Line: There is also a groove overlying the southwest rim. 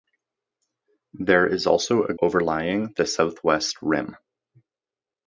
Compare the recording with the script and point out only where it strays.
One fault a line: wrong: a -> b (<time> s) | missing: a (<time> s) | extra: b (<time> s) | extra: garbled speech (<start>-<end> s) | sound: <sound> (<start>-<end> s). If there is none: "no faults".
missing: groove (2.1 s)